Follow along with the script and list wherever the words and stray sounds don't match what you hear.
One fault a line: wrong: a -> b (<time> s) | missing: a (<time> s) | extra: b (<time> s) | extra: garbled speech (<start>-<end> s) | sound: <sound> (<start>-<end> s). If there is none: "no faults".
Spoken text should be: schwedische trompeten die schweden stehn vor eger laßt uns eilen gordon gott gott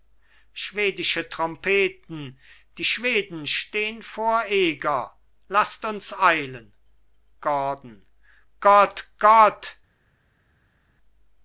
no faults